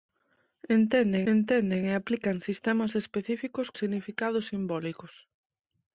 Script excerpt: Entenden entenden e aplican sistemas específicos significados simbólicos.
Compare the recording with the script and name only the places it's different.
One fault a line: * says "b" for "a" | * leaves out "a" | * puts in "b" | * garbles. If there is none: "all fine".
all fine